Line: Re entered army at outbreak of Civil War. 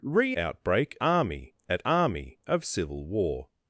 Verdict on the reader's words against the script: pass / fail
fail